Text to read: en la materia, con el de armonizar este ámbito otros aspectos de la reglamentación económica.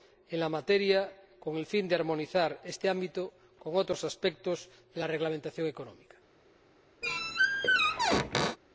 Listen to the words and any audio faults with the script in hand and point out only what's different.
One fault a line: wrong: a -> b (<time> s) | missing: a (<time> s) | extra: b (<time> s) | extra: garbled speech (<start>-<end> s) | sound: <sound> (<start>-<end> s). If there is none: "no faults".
extra: fin (1.6 s)
extra: con (3.6 s)
sound: squeak (7.0-8.6 s)